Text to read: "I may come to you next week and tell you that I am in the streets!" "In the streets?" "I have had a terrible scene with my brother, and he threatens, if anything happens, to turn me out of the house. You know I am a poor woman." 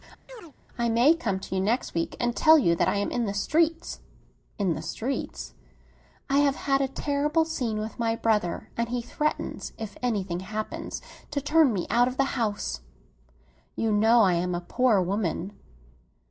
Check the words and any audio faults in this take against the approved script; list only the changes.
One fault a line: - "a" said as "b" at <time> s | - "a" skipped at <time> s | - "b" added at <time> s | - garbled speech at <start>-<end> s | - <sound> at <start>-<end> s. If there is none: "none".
- chirp at 0.3-0.5 s